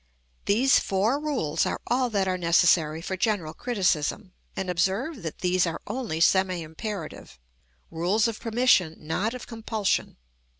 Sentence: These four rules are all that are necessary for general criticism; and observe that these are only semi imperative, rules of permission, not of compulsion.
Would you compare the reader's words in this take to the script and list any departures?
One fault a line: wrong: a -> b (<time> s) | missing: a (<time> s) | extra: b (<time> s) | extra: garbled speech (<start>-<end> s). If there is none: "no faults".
no faults